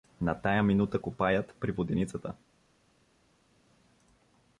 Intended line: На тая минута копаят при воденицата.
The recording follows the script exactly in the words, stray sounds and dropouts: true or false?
true